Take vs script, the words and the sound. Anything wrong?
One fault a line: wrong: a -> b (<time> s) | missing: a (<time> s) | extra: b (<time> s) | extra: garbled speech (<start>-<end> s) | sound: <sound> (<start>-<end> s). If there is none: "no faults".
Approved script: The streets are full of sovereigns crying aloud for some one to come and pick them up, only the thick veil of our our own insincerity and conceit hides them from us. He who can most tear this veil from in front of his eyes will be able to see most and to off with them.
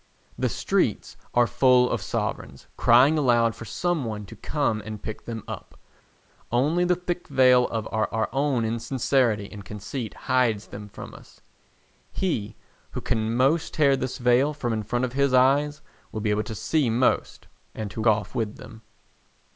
no faults